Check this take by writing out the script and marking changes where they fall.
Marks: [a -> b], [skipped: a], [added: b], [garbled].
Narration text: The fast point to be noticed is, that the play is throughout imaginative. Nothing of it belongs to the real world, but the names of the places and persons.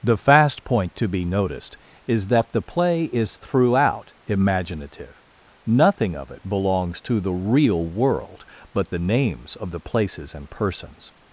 The fast point to be noticed is, that the play is throughout imaginative. Nothing of it belongs to the real world, but the names of the places and persons.